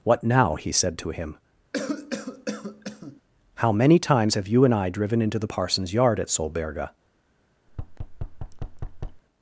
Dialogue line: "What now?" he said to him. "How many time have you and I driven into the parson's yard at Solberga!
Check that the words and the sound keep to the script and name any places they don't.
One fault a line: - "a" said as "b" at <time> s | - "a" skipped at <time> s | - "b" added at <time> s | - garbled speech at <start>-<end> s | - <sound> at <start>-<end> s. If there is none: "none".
- cough at 1.7-3.2 s
- "time" said as "times" at 4.0 s
- thud at 7.7-9.2 s